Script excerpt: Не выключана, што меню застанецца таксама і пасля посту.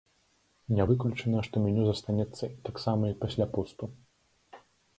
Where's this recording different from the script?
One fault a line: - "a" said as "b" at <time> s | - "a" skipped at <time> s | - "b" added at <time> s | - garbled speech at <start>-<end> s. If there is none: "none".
none